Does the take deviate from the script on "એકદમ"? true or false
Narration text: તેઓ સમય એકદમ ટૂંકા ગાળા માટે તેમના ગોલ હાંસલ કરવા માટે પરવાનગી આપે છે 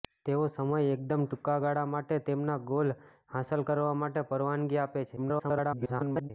false